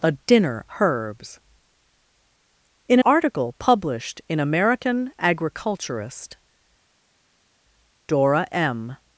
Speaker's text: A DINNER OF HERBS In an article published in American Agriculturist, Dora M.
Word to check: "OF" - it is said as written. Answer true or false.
false